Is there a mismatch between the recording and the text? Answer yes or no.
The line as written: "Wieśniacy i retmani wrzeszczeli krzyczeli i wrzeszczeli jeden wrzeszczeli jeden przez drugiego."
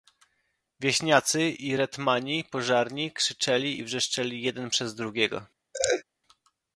yes